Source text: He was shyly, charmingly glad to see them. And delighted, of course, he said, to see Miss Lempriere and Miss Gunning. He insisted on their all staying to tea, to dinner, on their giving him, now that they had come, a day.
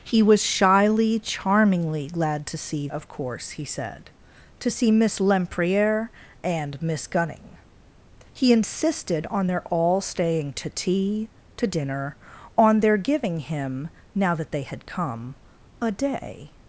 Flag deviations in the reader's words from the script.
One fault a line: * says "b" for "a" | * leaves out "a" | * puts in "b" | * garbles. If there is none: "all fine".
* leaves out "them And delighted"